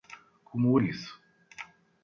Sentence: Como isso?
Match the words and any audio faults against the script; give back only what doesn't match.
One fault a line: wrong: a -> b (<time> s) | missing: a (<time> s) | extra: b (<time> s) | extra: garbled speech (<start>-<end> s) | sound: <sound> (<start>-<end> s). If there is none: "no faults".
no faults